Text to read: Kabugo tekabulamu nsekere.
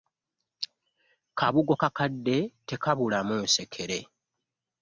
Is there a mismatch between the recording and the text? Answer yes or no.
yes